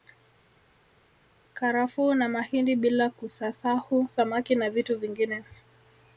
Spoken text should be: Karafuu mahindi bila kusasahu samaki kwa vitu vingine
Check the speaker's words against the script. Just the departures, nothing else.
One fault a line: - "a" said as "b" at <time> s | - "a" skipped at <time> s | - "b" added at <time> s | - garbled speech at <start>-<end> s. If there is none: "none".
- "na" added at 2.1 s
- "kwa" said as "na" at 4.5 s